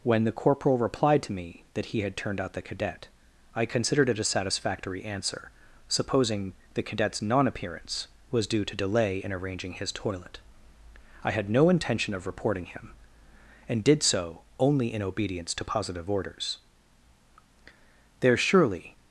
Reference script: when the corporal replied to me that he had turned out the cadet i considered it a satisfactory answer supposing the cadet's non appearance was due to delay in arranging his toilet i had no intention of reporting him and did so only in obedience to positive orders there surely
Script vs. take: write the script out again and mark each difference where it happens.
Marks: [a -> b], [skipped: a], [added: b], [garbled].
when the corporal replied to me that he had turned out the cadet i considered it a satisfactory answer supposing the cadet's non appearance was due to delay in arranging his toilet i had no intention of reporting him and did so only in obedience to positive orders there surely